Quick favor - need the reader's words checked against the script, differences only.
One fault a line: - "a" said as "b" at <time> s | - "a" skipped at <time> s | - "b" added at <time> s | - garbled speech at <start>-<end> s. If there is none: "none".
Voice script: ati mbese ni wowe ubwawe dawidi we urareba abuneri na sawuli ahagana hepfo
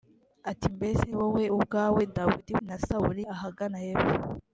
- "ni" skipped at 1.1 s
- "we urareba abuneri" skipped at 2.5 s